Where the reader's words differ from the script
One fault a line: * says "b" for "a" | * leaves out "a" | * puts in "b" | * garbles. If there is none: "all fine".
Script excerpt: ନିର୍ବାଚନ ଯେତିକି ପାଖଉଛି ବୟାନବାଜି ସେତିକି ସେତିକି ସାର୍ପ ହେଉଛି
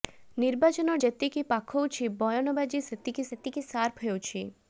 all fine